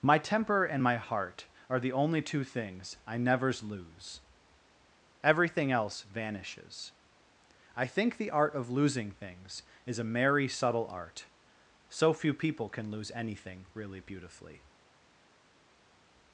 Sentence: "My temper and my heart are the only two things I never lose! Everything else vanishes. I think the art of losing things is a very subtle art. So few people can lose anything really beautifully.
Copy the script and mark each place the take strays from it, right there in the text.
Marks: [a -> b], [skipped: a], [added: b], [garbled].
"My temper and my heart are the only two things I [never -> nevers] lose! Everything else vanishes. I think the art of losing things is a [very -> merry] subtle art. So few people can lose anything really beautifully.